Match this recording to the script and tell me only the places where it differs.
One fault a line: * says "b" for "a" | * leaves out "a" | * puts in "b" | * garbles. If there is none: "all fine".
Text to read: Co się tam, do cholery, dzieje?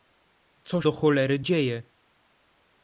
* leaves out "się tam"